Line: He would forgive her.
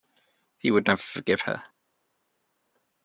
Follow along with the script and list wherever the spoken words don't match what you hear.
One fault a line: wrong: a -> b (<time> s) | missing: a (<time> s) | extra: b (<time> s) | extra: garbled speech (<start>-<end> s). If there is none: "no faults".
extra: never (0.9 s)